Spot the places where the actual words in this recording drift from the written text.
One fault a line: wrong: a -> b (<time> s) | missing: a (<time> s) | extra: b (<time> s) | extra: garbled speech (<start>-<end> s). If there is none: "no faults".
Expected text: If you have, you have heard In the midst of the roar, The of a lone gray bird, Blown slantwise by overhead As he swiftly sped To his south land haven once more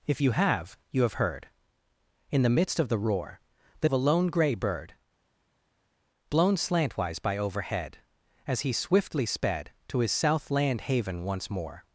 no faults